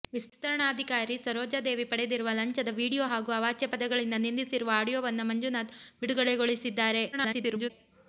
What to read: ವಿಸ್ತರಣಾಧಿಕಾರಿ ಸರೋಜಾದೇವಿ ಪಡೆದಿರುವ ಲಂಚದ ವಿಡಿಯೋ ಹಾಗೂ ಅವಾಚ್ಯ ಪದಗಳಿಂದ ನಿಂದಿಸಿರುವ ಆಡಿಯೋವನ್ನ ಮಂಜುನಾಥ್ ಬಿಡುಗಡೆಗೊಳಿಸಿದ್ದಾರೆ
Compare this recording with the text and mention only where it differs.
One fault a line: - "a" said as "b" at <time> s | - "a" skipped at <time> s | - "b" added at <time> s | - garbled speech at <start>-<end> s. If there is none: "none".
- garbled speech at 7.1-7.7 s